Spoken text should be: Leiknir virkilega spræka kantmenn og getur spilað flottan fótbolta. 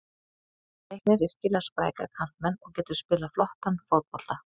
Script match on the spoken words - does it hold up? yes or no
yes